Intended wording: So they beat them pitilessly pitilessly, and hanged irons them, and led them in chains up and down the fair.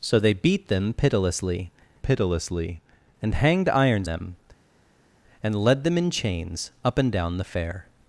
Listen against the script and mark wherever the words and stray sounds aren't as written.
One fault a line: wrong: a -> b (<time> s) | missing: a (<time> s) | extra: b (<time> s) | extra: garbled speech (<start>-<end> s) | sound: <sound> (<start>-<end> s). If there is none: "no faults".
no faults